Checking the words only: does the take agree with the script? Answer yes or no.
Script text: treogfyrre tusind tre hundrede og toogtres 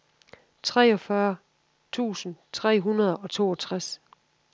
yes